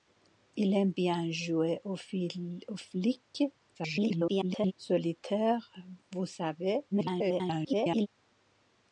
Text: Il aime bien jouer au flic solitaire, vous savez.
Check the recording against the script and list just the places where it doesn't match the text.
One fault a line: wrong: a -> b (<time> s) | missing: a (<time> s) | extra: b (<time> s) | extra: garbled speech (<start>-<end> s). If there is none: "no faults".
extra: garbled speech (3.7-4.7 s)
extra: garbled speech (6.9-8.1 s)